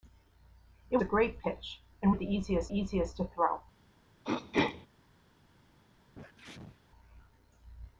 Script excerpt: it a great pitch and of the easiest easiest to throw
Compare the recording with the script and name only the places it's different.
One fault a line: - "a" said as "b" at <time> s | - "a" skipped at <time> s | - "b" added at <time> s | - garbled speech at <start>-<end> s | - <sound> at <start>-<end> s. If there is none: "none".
- throat clearing at 4.2-4.9 s
- sneeze at 6.1-6.8 s